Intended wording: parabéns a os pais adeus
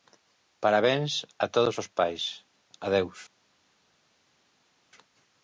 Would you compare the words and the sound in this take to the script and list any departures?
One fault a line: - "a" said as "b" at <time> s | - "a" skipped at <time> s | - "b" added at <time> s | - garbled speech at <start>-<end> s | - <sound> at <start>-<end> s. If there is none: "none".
- "todos" added at 1.6 s